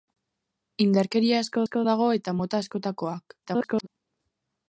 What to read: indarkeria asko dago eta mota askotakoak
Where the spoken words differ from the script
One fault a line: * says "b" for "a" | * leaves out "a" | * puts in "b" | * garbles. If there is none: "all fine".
* puts in "asko"
* garbles